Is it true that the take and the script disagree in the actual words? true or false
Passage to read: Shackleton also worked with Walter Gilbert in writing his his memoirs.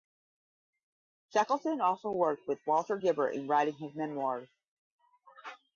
true